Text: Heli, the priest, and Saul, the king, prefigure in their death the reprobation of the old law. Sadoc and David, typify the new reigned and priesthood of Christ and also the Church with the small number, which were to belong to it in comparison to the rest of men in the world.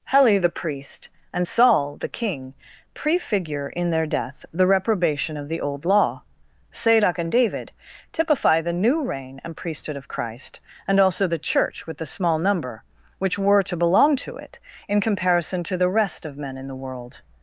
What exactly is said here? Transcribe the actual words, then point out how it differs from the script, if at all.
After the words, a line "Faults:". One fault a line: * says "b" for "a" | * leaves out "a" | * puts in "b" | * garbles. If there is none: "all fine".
Heli, the priest, and Saul, the king, prefigure in their death the reprobation of the old law. Sadoc and David, typify the new reign and priesthood of Christ and also the Church with the small number, which were to belong to it in comparison to the rest of men in the world.
Faults:
* says "reign" for "reigned"